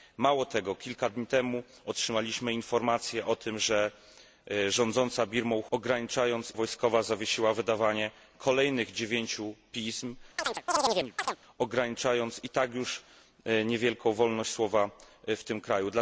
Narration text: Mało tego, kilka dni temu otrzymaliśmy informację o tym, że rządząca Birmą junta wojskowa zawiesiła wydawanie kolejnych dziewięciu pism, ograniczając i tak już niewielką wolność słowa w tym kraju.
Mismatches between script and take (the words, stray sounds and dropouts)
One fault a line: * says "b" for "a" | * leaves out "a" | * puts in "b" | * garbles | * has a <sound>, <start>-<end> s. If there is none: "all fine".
* says "ograniczając" for "junta"
* has a chirp, 10.4-11.4 s